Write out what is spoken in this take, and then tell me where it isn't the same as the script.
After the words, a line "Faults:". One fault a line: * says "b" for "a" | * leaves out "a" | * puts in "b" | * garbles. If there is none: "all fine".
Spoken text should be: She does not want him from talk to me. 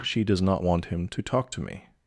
She does not want him to talk to me.
Faults:
* says "to" for "from"